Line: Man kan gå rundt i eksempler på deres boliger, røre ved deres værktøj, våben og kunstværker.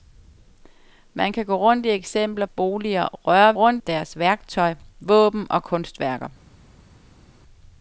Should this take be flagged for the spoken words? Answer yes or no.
yes